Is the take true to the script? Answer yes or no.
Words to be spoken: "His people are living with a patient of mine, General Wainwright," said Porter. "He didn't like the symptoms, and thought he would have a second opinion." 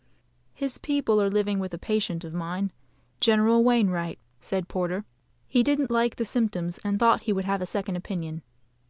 yes